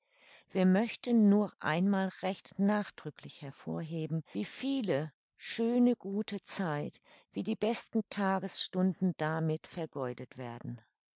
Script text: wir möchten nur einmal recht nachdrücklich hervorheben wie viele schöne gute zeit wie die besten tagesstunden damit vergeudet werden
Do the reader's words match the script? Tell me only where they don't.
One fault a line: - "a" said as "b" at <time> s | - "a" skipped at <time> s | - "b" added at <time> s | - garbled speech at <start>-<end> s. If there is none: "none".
none